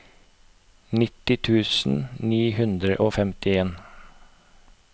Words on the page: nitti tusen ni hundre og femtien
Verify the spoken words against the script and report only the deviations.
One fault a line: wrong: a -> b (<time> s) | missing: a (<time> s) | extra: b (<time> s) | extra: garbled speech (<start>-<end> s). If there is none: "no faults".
no faults